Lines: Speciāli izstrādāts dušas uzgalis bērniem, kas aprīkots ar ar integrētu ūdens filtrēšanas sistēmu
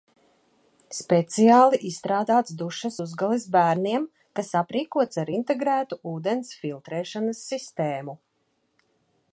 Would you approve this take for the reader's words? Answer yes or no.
no